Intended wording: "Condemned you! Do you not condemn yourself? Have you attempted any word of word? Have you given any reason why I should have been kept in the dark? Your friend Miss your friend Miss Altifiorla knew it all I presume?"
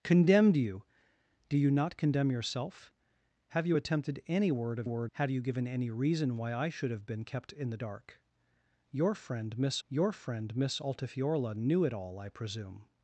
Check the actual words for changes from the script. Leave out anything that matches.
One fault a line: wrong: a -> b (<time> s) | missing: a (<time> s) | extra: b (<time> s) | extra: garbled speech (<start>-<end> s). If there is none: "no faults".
no faults